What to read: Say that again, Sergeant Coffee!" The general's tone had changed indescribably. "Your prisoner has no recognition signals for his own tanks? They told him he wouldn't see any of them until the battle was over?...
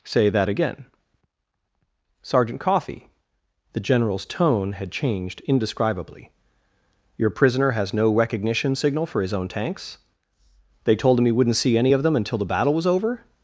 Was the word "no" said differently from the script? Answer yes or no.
no